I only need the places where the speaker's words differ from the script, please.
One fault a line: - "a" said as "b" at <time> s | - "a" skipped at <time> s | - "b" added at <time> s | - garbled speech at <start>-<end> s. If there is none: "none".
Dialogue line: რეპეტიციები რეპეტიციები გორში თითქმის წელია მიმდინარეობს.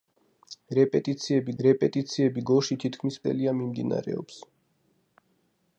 none